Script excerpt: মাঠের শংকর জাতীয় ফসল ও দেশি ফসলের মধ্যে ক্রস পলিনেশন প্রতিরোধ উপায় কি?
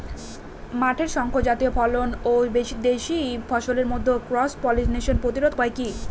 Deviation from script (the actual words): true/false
false